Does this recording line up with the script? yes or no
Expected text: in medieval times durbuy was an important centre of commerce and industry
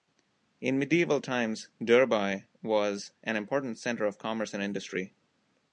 yes